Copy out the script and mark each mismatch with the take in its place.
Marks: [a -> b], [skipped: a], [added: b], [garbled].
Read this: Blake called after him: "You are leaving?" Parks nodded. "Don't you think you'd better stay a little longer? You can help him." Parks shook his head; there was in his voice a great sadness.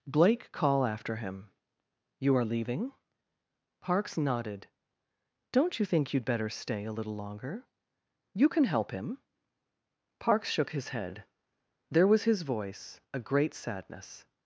Blake [called -> call] after him: "You are leaving?" Parks nodded. "Don't you think you'd better stay a little longer? You can help him." Parks shook his head; there was [skipped: in] his voice a great sadness.